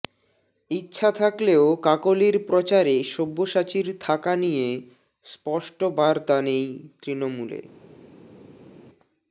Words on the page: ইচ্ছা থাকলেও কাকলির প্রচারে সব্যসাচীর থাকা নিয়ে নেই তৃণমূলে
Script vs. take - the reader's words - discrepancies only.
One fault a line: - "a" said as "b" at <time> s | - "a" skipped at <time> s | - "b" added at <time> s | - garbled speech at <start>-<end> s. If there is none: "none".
- "স্পষ্ট বার্তা" added at 5.2 s